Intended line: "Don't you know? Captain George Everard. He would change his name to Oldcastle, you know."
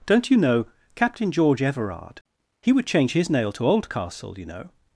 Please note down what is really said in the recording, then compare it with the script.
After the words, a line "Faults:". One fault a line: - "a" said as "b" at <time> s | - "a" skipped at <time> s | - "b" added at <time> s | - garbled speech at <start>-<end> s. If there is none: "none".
"Don't you know? Captain George Everard. He would change his nail to Oldcastle, you know."
Faults:
- "name" said as "nail" at 3.3 s